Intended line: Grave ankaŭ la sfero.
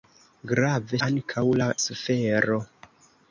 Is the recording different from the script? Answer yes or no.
no